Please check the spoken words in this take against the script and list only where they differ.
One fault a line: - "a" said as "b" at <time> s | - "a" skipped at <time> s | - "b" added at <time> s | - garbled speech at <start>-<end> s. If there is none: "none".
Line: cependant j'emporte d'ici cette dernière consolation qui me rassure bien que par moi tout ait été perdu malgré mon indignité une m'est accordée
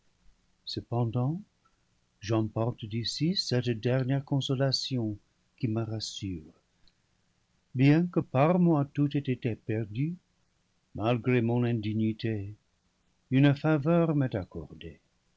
- "faveur" added at 13.5 s